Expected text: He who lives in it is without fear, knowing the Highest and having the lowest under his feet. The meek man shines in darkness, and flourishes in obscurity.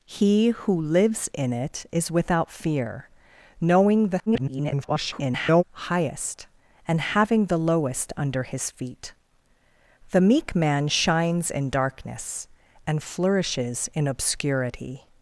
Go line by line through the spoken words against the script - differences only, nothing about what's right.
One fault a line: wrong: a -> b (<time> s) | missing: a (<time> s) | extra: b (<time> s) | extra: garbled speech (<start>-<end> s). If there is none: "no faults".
extra: garbled speech (4.3-5.6 s)